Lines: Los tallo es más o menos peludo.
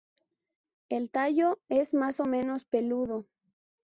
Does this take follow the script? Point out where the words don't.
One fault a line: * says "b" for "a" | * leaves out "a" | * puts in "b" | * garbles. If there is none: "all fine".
* says "El" for "Los"